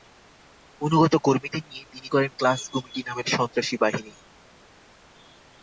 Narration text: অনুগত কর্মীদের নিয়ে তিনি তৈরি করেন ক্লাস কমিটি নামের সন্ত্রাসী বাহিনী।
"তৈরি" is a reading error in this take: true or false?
true